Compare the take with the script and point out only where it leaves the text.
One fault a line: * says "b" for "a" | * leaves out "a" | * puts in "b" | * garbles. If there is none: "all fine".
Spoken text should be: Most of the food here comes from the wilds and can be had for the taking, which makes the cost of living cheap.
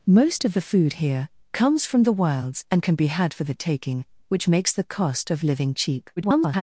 * garbles